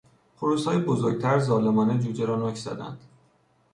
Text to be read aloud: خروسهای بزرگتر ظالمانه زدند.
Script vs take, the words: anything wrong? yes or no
yes